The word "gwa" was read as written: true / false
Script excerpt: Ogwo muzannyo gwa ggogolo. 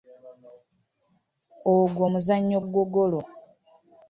false